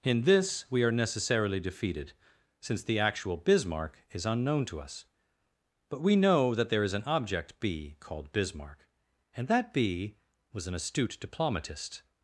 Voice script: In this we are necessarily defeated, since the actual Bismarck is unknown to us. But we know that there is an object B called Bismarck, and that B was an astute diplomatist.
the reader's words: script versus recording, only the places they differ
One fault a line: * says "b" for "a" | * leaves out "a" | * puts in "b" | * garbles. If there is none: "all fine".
all fine